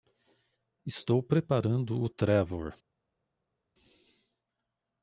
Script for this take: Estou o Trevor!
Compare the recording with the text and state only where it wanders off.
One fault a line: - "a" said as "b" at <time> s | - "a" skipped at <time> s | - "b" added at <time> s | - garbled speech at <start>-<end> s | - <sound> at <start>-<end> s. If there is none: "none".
- "preparando" added at 1.2 s